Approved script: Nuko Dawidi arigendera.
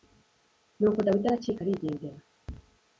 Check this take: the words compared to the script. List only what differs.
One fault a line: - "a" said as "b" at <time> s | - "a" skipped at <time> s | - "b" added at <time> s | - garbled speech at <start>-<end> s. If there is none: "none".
- "aracika" added at 1.3 s